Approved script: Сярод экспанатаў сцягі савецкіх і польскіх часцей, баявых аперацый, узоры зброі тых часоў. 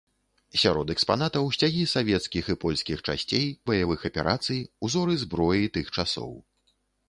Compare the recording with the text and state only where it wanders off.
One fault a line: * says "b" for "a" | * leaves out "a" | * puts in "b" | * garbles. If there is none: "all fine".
all fine